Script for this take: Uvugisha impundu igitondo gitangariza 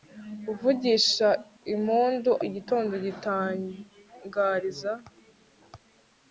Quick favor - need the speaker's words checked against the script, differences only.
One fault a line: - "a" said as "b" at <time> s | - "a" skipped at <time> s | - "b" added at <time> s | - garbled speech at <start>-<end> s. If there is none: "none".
none